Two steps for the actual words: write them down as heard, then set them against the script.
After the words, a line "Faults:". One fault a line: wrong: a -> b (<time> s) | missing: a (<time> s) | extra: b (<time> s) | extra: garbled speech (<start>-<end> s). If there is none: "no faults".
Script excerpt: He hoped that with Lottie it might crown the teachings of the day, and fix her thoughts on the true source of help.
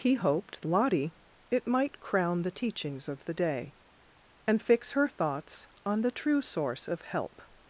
He hoped Lottie it might crown the teachings of the day, and fix her thoughts on the true source of help.
Faults:
missing: that with (0.6 s)